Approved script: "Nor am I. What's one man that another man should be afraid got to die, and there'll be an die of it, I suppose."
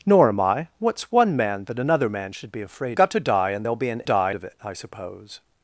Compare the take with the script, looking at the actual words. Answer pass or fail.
pass